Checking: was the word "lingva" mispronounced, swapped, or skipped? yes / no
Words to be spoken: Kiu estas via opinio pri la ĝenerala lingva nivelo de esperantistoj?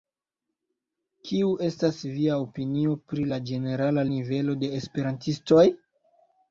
yes